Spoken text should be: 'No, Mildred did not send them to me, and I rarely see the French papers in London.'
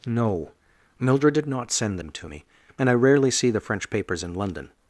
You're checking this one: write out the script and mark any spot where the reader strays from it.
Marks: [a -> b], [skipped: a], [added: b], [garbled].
'No, Mildred did not send them to me, and I rarely see the French papers in London.'